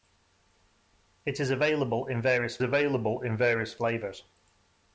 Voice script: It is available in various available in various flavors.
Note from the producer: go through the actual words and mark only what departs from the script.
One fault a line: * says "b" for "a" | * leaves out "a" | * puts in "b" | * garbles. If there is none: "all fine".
all fine